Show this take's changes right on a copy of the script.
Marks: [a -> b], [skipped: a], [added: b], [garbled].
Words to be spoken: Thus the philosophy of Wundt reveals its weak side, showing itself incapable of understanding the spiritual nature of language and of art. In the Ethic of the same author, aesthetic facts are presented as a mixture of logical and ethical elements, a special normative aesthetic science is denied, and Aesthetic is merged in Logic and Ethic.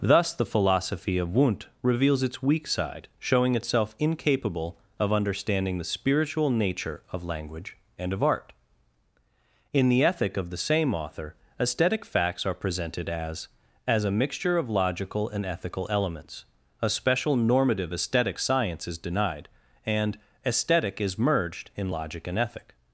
Thus the philosophy of Wundt reveals its weak side, showing itself incapable of understanding the spiritual nature of language and of art. In the Ethic of the same author, aesthetic facts are presented as [added: as] a mixture of logical and ethical elements, a special normative aesthetic science is denied, and Aesthetic is merged in Logic and Ethic.